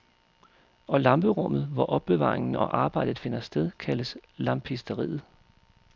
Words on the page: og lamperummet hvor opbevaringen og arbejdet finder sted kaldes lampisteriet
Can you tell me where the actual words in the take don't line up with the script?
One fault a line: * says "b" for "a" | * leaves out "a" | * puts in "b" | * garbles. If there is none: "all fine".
all fine